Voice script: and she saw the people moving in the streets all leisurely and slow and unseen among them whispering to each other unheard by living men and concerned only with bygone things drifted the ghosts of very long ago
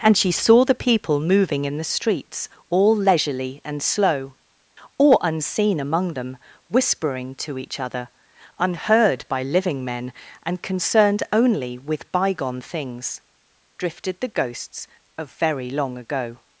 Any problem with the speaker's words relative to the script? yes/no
yes